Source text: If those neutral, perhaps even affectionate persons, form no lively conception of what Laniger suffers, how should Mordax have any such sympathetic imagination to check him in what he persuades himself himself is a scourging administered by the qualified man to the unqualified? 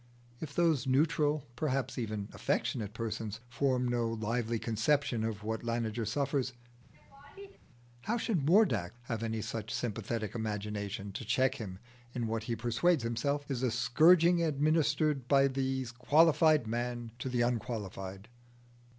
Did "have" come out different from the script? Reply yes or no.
no